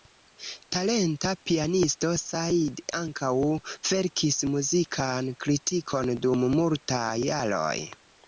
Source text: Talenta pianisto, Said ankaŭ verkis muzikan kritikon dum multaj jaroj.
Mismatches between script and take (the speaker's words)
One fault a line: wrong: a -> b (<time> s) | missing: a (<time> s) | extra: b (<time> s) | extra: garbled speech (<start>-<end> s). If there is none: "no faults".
no faults